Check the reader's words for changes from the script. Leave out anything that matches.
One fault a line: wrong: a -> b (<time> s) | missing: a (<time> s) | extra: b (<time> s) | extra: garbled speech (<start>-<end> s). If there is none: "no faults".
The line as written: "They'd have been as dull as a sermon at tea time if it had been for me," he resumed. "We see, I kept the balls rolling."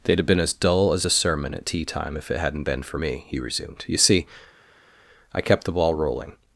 wrong: had -> hadn't (2.4 s)
wrong: We -> You (3.9 s)
wrong: balls -> ball (5.7 s)